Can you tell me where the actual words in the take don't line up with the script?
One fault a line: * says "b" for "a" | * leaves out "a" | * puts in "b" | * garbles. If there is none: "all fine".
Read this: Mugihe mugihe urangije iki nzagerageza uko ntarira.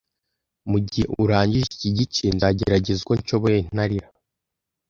* leaves out "mugihe"
* puts in "gice"
* puts in "nshoboye"